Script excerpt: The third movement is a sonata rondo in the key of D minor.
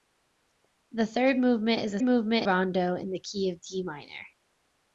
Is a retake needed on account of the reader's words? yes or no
yes